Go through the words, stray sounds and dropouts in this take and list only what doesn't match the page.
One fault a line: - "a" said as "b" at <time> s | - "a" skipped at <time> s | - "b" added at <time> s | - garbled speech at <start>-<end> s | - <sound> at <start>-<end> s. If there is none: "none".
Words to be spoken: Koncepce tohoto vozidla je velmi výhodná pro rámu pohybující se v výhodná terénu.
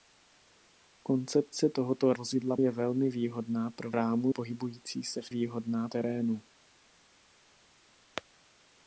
none